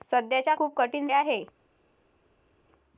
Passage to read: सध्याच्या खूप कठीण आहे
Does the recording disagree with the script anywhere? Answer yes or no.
no